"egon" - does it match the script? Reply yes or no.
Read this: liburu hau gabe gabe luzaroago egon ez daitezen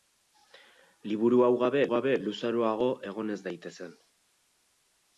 yes